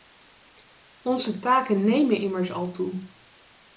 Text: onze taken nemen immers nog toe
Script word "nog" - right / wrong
wrong